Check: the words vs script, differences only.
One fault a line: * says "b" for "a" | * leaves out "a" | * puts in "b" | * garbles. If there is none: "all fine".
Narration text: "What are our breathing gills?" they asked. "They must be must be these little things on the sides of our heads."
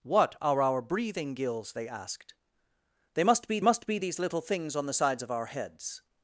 all fine